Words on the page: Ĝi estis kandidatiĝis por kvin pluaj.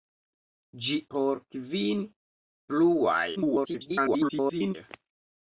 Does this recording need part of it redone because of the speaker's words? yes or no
yes